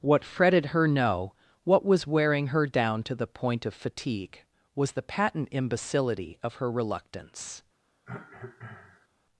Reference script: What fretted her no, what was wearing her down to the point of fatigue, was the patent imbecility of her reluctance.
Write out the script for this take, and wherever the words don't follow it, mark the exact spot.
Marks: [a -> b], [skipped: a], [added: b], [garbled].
What fretted her no, what was wearing her down to the point of fatigue, was the patent imbecility of her reluctance.